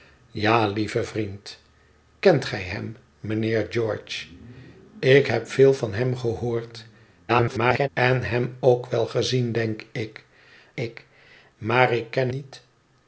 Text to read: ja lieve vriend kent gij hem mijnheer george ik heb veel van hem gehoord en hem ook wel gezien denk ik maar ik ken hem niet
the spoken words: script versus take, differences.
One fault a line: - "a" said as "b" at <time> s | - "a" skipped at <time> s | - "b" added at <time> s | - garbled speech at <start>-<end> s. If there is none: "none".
- garbled speech at 7.3-7.9 s
- "ik" added at 10.7 s
- "hem" skipped at 12.3 s